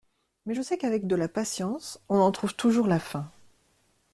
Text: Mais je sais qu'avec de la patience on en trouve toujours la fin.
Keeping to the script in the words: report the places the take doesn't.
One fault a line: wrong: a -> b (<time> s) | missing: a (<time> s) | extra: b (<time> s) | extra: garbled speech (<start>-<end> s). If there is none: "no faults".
no faults